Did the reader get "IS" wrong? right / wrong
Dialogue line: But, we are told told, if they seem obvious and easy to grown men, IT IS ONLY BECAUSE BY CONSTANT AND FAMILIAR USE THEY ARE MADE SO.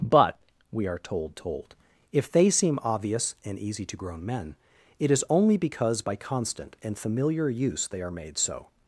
right